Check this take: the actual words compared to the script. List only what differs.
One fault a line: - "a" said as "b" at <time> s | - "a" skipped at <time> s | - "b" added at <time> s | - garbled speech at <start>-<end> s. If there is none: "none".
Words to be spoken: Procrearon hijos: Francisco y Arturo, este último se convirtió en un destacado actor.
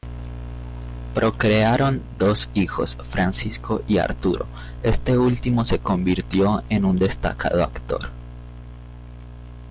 - "dos" added at 2.2 s